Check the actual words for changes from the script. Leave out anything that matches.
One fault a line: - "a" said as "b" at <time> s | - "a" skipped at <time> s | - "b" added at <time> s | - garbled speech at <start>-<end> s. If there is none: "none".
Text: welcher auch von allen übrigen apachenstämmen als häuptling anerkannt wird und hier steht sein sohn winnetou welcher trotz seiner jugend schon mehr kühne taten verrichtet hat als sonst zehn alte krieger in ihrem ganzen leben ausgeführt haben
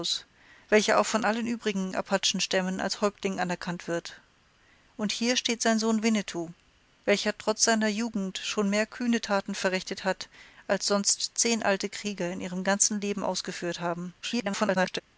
- garbled speech at 14.2-15.0 s